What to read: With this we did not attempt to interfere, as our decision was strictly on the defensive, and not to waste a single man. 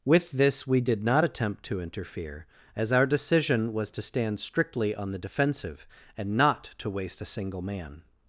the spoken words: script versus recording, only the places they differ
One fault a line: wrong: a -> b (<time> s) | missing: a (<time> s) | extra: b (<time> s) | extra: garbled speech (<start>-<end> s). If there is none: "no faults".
extra: to stand (3.9 s)